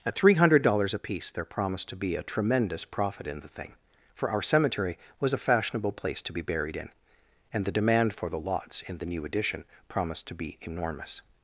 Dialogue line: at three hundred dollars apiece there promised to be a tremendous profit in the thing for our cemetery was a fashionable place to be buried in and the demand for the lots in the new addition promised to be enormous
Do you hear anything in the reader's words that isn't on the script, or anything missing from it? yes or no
no